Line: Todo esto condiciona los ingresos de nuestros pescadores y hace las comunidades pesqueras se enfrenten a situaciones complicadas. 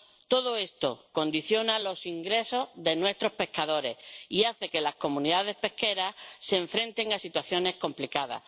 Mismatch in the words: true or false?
true